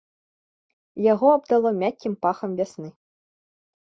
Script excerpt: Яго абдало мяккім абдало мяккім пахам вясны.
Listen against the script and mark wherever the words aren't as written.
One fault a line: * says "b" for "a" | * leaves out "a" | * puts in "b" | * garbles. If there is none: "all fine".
* leaves out "абдало мяккім"